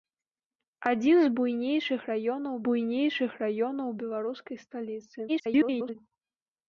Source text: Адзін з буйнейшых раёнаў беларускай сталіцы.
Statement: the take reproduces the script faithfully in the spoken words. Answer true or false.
false